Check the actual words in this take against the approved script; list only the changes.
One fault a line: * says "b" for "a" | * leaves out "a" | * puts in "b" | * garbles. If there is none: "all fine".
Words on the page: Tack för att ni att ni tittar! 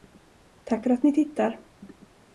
* leaves out "att ni"